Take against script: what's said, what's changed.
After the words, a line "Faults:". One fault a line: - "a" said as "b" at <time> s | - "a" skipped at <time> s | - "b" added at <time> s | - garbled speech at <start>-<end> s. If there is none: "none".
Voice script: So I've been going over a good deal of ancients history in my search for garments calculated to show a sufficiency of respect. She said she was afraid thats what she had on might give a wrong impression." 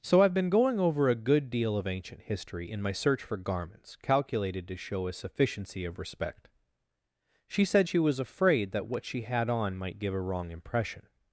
So I've been going over a good deal of ancient history in my search for garments calculated to show a sufficiency of respect. She said she was afraid that what she had on might give a wrong impression."
Faults:
- "ancients" said as "ancient" at 1.9 s
- "thats" said as "that" at 8.7 s